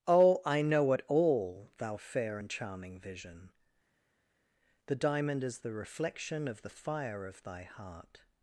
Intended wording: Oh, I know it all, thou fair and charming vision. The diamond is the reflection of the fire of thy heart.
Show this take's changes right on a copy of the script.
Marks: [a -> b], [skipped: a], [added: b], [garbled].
Oh, I know it all, thou fair and charming vision. The diamond is the reflection of the fire of thy heart.